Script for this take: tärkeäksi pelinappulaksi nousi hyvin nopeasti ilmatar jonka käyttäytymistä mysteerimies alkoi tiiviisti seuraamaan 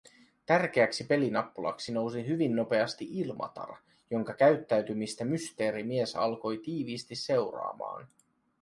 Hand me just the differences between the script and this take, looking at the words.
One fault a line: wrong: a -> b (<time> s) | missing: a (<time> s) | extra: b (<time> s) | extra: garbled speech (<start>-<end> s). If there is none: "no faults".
no faults